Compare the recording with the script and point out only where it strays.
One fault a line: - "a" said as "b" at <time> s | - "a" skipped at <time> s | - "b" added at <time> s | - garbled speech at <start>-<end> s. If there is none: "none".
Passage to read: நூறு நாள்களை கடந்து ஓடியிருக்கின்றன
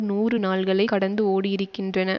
none